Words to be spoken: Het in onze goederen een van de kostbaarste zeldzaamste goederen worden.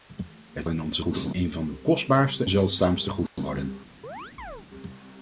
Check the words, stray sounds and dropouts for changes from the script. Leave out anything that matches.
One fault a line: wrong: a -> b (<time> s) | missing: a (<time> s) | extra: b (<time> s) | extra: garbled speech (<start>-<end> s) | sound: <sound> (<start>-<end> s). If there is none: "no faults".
sound: dropout (3.3-3.4 s)
sound: chirp (4.0-4.7 s)